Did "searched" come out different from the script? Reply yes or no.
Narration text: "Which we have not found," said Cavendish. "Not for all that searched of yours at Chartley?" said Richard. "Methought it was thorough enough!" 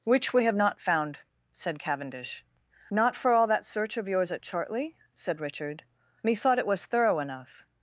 yes